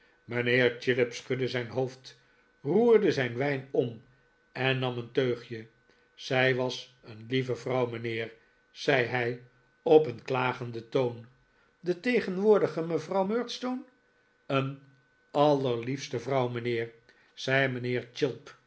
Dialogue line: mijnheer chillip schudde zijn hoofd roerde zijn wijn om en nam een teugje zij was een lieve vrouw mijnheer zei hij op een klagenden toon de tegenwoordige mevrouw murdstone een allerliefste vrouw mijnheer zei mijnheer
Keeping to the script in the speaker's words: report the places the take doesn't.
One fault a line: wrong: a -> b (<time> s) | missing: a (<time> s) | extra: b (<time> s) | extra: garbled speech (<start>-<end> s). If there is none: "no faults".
no faults